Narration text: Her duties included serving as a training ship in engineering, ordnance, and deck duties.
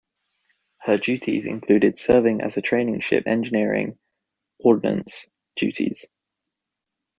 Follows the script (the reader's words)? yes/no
no